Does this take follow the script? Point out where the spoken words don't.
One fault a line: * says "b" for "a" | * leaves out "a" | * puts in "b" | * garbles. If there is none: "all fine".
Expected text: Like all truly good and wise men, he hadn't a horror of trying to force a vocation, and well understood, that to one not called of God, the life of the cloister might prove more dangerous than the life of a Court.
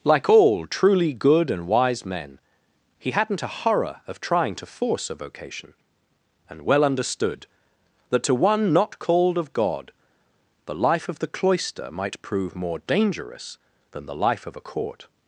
all fine